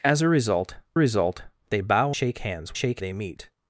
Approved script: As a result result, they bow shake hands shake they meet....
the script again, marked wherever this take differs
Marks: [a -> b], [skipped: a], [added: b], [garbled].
As a result result, they bow shake hands shake they meet....